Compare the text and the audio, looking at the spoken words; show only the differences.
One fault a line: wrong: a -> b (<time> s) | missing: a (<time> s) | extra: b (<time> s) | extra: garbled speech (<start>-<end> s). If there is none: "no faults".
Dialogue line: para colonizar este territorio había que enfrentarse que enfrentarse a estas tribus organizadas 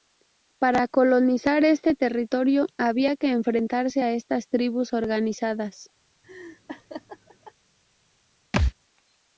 missing: que enfrentarse (4.0 s)